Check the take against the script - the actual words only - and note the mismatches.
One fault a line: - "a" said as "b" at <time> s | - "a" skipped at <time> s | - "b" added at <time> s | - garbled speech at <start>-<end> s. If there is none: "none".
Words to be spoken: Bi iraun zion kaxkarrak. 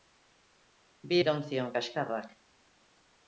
none